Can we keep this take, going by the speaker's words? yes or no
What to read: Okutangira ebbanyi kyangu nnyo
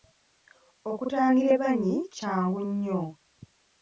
yes